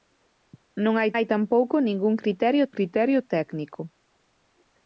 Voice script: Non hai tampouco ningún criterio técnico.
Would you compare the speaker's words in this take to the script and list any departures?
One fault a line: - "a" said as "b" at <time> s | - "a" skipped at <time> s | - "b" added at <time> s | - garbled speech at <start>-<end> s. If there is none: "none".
- "hai" added at 1.1 s
- "criterio" added at 2.7 s